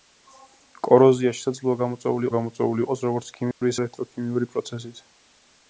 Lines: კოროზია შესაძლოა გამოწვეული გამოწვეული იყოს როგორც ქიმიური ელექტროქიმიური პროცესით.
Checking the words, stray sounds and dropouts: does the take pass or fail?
fail